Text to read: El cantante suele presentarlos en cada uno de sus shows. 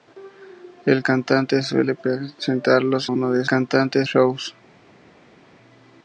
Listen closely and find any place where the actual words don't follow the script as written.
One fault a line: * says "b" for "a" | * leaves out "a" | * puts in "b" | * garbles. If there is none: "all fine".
* leaves out "en cada"
* says "cantante" for "sus"